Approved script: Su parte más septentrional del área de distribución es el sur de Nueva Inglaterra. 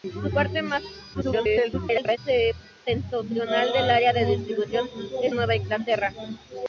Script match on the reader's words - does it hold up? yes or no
no